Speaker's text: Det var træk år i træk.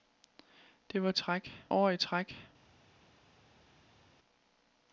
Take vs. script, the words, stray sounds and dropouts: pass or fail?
pass